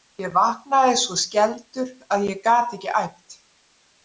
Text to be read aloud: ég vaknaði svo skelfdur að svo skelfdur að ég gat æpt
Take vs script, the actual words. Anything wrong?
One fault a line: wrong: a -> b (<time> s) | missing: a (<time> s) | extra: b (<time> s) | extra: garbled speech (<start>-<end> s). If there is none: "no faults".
missing: svo skelfdur að (2.3 s)
extra: ekki (2.8 s)